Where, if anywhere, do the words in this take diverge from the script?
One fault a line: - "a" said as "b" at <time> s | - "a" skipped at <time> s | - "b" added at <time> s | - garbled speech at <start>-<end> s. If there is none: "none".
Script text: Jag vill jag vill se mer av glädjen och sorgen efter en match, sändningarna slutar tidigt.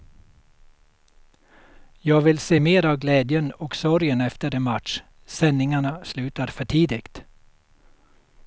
- "jag vill" skipped at 2.4 s
- "för" added at 6.5 s